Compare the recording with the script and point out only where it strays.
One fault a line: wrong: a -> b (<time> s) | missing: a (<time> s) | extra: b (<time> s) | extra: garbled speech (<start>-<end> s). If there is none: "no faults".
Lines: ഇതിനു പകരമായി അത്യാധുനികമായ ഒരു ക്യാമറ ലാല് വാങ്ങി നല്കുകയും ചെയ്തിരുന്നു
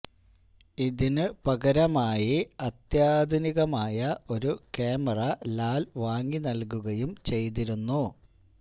no faults